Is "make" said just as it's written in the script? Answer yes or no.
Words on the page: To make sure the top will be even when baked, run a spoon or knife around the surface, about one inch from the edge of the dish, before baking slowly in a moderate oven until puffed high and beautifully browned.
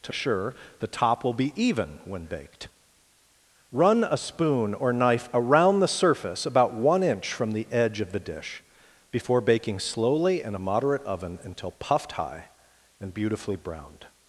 no